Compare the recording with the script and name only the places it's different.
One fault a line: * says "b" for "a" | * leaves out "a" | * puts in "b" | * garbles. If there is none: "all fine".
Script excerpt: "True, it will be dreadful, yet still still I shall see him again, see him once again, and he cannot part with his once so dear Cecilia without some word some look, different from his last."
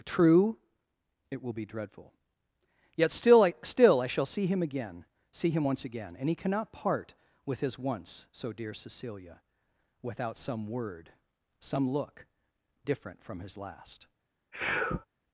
* puts in "I"